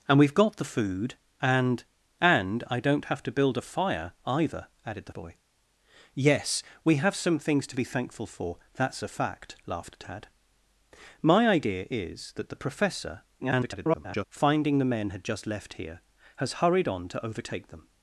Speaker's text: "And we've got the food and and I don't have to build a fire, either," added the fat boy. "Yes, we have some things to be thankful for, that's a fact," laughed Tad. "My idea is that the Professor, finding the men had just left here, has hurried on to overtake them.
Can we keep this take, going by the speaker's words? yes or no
no